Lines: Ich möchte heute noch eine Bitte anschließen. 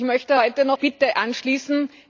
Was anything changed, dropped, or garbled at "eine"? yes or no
yes